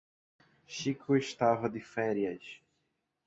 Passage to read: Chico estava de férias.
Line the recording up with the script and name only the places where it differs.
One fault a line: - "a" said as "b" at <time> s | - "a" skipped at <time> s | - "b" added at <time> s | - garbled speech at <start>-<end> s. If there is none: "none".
none